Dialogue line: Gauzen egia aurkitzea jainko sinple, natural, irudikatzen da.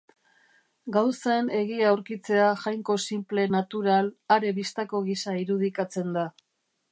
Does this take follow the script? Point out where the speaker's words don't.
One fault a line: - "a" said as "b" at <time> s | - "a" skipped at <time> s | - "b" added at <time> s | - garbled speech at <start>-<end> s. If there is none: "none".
- "are bistako gisa" added at 4.4 s